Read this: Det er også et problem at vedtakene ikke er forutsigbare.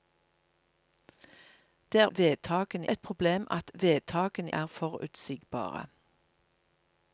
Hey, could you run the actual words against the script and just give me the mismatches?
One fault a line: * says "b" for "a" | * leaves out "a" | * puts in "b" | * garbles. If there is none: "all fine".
* says "vedtakene" for "også"
* leaves out "ikke"